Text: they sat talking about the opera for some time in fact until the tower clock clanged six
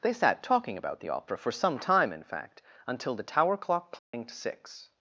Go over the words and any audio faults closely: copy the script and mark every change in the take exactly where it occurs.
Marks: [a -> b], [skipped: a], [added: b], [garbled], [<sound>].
they sat talking about the opera for some time in fact until the tower clock clanged [dropout] six